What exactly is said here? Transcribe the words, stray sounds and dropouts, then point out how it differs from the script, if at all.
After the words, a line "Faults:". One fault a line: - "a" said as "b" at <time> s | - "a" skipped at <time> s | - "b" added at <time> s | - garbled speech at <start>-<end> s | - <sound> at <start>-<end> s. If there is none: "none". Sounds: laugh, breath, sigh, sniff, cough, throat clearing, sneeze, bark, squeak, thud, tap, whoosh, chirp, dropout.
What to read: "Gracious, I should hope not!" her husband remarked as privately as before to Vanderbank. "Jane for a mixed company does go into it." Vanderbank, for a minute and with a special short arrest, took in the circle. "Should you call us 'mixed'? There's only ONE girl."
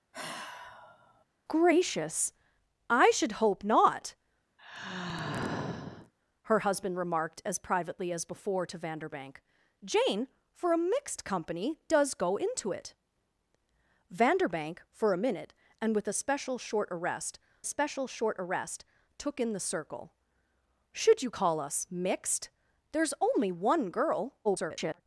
"Gracious, I should hope not!" her husband remarked as privately as before to Vanderbank. "Jane for a mixed company does go into it." Vanderbank, for a minute and with a special short arrest special short arrest, took in the circle. "Should you call us 'mixed'? There's only ONE girl." [garbled]
Faults:
- sigh at 0.1-1.2 s
- sigh at 4.6-6.1 s
- "special short arrest" added at 17.6 s
- garbled speech at 24.4-25.0 s